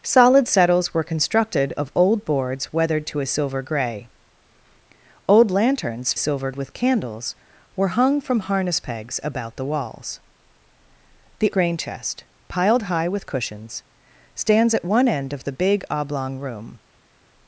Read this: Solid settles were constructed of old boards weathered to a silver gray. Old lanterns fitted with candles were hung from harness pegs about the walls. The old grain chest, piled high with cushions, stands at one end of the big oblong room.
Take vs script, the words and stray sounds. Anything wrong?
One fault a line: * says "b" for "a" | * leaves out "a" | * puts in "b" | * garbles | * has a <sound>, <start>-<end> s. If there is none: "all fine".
* says "silver" for "fitted"
* leaves out "old"